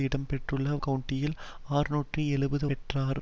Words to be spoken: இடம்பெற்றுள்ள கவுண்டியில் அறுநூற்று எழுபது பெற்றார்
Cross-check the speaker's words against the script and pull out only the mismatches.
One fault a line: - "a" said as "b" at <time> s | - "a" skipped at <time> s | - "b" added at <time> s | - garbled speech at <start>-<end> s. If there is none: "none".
none